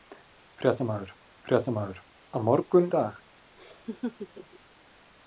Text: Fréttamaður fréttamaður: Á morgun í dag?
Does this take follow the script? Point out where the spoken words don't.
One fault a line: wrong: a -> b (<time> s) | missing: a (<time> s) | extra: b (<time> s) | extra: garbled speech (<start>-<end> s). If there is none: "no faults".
no faults